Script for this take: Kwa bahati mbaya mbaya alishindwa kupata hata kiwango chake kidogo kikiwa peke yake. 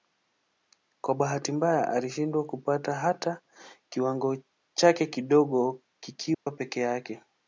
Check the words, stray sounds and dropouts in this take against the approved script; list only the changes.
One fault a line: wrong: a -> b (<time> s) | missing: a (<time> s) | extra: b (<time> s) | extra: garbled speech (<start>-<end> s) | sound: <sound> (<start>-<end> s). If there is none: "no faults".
missing: mbaya (1.9 s)
sound: dropout (6.3-6.5 s)